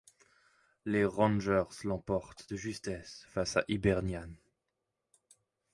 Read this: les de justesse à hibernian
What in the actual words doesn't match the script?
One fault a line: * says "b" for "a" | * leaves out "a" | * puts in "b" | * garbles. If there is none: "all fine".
* puts in "rangers l'emportent"
* puts in "face"